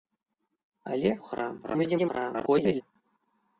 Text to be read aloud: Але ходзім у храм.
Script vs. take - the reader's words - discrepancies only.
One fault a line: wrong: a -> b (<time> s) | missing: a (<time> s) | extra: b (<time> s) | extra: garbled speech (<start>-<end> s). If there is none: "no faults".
missing: ходзім (1.1 s)
extra: garbled speech (1.6-2.8 s)